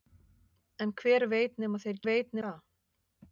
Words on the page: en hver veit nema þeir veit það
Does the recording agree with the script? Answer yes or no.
yes